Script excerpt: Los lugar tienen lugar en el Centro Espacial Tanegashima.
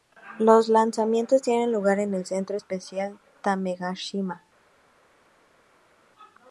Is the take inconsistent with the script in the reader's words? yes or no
yes